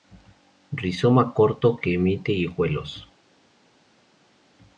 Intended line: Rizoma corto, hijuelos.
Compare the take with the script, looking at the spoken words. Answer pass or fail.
fail